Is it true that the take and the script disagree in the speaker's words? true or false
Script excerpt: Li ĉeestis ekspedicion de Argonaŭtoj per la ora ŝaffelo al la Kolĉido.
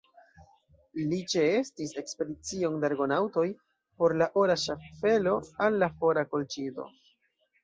true